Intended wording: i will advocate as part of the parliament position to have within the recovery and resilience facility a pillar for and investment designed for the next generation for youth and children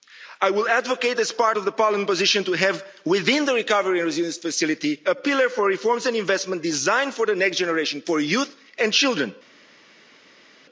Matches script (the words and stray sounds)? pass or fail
fail